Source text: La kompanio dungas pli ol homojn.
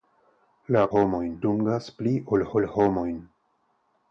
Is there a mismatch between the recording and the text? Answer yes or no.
yes